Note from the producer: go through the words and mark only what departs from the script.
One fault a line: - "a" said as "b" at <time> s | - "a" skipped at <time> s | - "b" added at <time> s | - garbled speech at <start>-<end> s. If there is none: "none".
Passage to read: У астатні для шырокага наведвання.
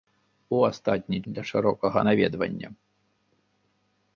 none